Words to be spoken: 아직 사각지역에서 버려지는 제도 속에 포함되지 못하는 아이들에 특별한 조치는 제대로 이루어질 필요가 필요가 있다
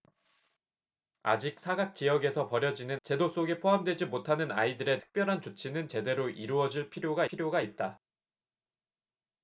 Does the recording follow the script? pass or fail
pass